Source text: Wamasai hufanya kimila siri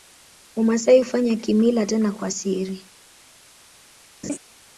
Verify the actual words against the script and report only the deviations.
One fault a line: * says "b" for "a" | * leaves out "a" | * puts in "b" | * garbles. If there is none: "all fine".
* puts in "tena kwa"